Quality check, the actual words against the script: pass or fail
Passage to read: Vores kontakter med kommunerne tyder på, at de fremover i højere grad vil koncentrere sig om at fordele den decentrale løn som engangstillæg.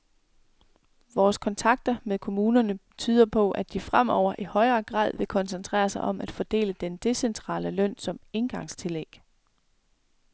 pass